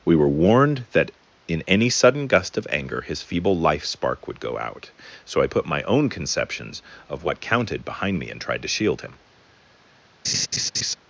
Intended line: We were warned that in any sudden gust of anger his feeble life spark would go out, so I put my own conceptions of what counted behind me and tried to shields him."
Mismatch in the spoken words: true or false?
true